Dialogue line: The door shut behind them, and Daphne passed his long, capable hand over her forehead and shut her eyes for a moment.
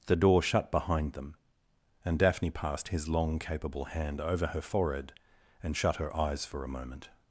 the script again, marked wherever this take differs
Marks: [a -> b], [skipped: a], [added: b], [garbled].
The door shut behind them, and Daphne passed his long, capable hand over her forehead and shut her eyes for a moment.